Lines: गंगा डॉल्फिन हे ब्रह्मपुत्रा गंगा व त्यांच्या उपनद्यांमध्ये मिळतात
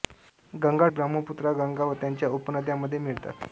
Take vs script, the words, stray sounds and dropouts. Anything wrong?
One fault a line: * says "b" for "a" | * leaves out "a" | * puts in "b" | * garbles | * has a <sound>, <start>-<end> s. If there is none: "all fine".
* leaves out "डॉल्फिन हे"